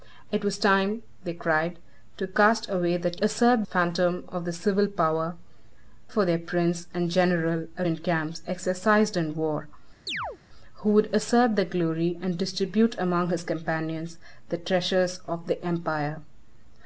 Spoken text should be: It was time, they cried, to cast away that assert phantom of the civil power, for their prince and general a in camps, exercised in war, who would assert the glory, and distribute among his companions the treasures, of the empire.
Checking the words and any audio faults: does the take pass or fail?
fail